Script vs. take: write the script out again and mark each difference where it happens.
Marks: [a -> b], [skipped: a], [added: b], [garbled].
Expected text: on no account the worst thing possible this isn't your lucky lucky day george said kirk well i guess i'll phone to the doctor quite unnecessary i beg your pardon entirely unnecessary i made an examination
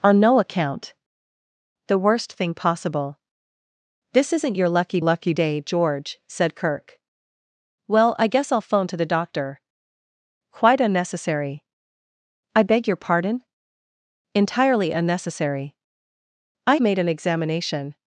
on no account the worst thing possible this isn't your lucky lucky day george said kirk well i guess i'll phone to the doctor quite unnecessary i beg your pardon entirely unnecessary i made an examination